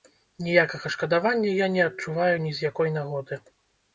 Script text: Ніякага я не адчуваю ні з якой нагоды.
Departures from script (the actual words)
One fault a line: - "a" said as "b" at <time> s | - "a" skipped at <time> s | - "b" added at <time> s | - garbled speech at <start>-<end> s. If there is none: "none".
- "шкадавання" added at 0.9 s